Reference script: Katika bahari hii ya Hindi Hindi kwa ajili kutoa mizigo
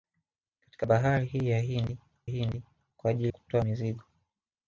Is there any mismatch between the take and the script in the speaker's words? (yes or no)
no